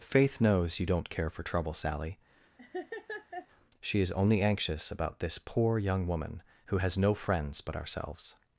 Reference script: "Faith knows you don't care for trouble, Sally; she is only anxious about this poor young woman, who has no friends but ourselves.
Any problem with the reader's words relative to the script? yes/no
no